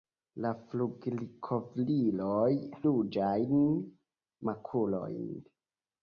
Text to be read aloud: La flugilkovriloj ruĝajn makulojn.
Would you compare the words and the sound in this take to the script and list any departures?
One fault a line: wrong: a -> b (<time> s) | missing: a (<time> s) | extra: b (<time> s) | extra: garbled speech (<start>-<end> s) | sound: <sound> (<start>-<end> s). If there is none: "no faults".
no faults